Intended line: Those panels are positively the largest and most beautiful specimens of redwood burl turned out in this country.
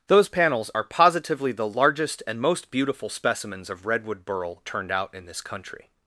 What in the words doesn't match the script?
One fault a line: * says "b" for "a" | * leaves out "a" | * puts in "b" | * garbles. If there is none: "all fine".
all fine